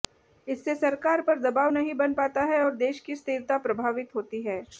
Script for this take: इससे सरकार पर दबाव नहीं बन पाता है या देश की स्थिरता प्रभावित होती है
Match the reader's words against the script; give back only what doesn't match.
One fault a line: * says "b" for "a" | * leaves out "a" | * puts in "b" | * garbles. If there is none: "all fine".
* says "और" for "या"